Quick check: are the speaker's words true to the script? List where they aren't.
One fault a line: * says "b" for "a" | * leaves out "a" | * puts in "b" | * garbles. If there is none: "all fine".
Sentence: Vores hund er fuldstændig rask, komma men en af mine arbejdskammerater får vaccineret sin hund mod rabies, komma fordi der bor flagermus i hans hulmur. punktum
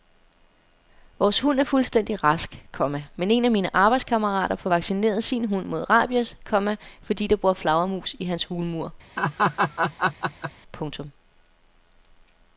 all fine